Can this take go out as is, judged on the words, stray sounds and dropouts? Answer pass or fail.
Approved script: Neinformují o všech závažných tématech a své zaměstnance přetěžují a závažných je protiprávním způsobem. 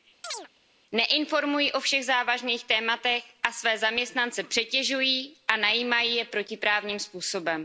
fail